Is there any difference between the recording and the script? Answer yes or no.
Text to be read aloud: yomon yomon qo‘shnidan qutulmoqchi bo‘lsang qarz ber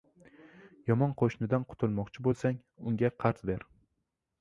yes